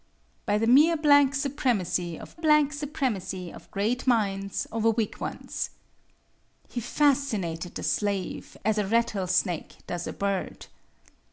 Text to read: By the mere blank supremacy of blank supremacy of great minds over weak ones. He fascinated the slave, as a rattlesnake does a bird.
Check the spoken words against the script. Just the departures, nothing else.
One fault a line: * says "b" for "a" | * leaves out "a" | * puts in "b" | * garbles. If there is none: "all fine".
all fine